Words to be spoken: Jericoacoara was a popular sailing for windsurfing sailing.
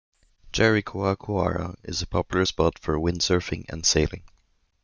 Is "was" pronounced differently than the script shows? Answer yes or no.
yes